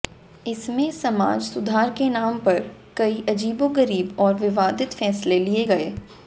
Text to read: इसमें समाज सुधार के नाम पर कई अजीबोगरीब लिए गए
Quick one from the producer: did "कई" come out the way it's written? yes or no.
yes